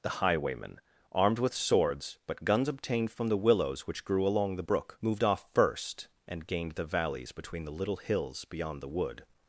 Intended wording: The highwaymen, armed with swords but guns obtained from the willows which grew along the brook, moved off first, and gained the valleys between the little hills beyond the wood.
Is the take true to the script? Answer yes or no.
yes